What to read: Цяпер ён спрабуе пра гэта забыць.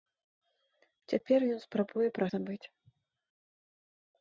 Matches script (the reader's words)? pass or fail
fail